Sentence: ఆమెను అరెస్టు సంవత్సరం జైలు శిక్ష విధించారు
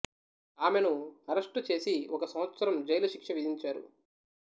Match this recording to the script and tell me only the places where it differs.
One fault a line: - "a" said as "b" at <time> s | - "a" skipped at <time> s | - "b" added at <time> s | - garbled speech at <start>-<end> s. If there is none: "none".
- "చేసి ఒక" added at 1.7 s